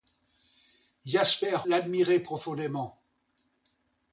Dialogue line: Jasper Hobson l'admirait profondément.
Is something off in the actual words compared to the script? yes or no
yes